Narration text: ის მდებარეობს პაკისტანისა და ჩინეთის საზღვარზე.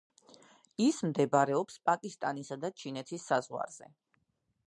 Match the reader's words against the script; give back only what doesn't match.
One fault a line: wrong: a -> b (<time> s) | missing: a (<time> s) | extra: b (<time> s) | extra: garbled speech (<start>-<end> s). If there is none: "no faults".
no faults